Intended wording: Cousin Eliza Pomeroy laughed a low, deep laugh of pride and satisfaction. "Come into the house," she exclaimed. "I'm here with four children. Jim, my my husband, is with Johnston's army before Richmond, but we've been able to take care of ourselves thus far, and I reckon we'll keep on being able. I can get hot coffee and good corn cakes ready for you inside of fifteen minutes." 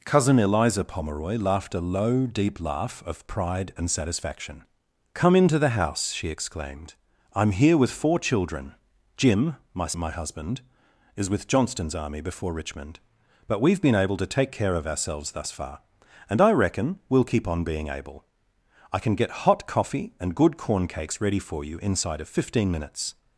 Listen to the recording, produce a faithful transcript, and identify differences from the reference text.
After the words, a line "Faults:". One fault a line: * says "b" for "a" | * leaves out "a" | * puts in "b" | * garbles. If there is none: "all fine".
Cousin Eliza Pomeroy laughed a low, deep laugh of pride and satisfaction. "Come into the house," she exclaimed. "I'm here with four children. Jim, my my husband, is with Johnston's army before Richmond, but we've been able to take care of ourselves thus far, and I reckon we'll keep on being able. I can get hot coffee and good corn cakes ready for you inside of fifteen minutes."
Faults:
all fine